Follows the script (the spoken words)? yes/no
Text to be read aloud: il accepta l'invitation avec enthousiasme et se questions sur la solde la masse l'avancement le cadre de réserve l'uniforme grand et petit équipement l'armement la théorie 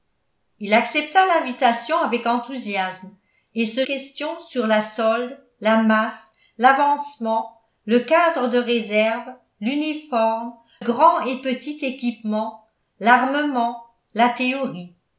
yes